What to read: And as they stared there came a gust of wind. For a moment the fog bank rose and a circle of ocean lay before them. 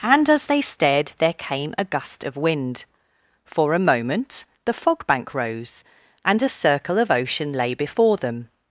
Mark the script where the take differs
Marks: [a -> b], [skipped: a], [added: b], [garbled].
And as they stared there came a gust of wind. For a moment the fog bank rose and a circle of ocean lay before them.